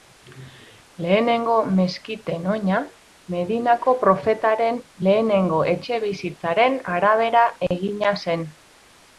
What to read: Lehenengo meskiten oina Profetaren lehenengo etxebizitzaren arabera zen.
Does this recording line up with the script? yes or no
no